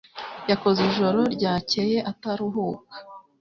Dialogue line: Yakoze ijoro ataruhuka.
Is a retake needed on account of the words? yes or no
yes